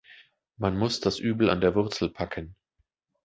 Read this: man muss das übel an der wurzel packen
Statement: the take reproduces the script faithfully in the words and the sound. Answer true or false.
true